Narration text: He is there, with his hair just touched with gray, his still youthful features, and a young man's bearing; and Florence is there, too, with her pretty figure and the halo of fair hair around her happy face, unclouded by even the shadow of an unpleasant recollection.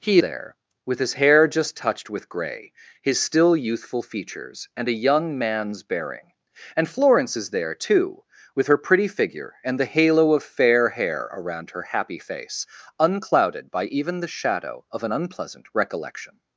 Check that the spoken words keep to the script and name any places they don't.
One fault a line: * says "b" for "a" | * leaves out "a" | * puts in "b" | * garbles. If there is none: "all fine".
* leaves out "is"